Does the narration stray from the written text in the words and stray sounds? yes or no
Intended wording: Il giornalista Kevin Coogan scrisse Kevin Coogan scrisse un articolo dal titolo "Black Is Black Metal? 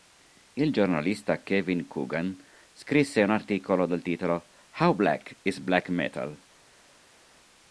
yes